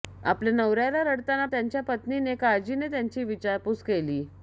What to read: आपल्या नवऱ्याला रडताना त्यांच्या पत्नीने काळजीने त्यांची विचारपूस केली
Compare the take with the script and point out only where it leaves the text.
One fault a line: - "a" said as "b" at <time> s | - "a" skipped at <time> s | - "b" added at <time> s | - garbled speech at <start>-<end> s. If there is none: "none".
none